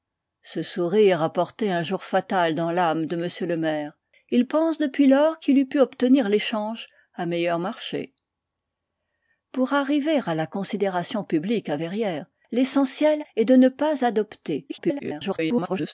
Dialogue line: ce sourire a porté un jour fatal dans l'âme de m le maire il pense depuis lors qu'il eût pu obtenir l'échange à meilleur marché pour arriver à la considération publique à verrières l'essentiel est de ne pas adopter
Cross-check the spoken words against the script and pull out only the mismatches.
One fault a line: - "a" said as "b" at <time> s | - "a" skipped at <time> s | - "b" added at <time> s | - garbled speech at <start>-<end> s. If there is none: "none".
- garbled speech at 14.7-15.9 s